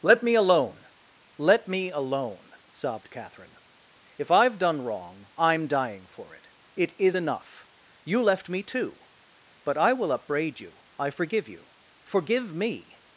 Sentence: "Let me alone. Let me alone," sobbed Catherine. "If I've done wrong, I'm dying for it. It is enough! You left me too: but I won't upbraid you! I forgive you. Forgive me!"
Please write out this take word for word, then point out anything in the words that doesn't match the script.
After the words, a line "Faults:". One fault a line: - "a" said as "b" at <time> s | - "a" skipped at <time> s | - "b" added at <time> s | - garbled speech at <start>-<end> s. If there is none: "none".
"Let me alone. Let me alone," sobbed Catherine. "If I've done wrong, I'm dying for it. It is enough! You left me too: but I will upbraid you! I forgive you. Forgive me!"
Faults:
- "won't" said as "will" at 9.9 s